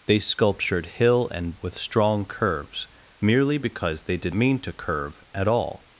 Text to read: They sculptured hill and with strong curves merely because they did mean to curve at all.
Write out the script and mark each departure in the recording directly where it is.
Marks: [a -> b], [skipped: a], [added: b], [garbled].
They sculptured hill and with strong curves merely because they did mean to curve at all.